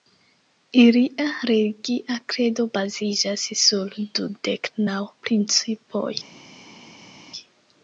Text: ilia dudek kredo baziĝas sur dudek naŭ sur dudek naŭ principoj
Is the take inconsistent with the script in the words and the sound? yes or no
yes